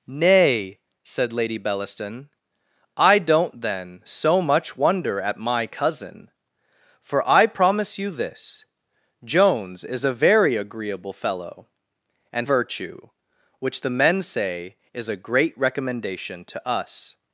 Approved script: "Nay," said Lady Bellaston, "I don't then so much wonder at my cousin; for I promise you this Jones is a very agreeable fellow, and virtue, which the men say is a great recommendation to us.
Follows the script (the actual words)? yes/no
yes